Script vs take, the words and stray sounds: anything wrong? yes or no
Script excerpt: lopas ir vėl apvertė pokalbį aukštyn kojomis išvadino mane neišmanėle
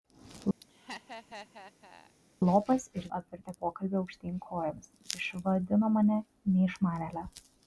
yes